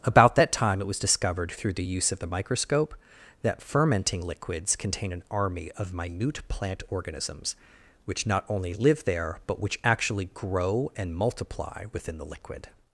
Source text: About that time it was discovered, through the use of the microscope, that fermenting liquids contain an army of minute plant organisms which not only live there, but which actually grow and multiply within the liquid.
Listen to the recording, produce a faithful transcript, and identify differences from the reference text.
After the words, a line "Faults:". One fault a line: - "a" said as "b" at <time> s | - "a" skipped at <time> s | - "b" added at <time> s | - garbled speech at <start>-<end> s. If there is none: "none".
About that time it was discovered, through the use of the microscope, that fermenting liquids contain an army of minute plant organisms which not only live there, but which actually grow and multiply within the liquid.
Faults:
none